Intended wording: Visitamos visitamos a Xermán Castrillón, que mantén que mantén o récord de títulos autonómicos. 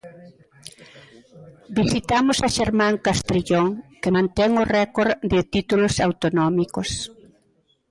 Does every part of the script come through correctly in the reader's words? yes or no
no